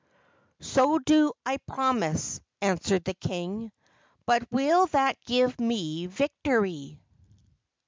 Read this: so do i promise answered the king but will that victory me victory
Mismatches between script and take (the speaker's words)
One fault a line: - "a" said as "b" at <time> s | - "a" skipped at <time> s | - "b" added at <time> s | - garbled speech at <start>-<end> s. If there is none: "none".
- "victory" said as "give" at 5.3 s